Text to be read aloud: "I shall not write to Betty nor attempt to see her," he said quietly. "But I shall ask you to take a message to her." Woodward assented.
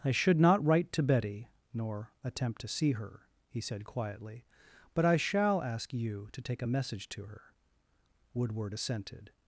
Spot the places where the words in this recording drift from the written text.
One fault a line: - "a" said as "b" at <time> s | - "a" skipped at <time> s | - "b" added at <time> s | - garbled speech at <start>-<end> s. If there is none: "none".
- "shall" said as "should" at 0.1 s